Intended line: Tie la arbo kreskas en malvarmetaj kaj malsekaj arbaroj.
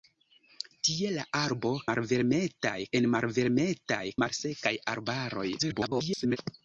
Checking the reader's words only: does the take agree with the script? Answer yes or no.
no